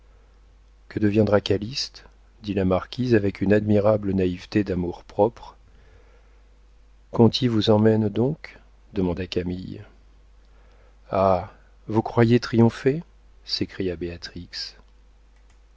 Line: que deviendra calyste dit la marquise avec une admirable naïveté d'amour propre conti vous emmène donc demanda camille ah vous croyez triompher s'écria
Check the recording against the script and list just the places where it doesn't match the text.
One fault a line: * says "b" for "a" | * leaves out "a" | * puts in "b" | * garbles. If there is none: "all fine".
all fine